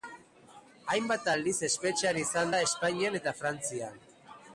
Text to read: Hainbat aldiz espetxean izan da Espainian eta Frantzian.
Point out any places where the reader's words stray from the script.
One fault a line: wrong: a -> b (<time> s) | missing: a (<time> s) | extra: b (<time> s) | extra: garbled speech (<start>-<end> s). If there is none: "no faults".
no faults